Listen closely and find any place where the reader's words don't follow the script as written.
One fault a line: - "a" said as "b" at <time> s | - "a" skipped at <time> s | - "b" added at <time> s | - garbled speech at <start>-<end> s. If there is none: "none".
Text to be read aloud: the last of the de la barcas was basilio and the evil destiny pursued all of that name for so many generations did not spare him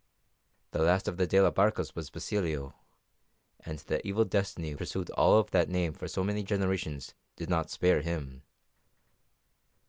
none